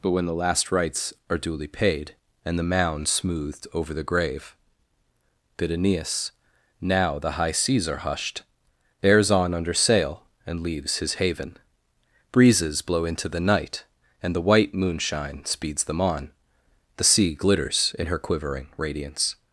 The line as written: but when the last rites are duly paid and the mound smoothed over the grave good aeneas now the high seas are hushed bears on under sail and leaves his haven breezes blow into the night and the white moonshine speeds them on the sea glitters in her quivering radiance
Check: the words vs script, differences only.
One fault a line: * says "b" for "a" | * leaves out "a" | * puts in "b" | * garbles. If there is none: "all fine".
* says "bid" for "good"